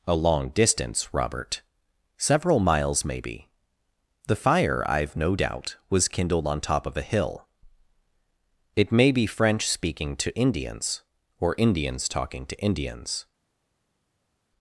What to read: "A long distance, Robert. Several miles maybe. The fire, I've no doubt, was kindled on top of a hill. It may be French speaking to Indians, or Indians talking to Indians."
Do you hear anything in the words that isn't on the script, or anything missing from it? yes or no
no